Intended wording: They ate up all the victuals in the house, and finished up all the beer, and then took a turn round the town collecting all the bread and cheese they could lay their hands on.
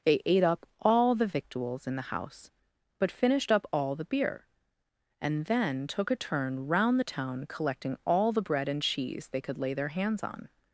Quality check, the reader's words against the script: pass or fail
fail